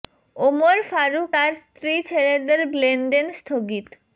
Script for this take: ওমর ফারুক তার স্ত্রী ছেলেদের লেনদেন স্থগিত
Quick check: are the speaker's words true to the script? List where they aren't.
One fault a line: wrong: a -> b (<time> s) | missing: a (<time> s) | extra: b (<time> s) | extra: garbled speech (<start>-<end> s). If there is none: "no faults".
no faults